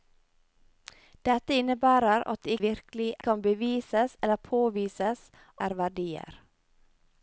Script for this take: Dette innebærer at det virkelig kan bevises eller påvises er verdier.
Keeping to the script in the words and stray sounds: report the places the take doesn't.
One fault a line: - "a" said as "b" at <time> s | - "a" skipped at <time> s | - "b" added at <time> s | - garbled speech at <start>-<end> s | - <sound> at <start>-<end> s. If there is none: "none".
none